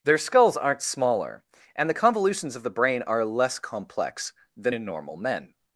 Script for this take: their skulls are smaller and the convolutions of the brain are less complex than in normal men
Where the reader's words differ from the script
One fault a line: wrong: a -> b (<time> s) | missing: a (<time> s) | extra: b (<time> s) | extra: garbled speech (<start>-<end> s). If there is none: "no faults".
wrong: are -> aren't (0.6 s)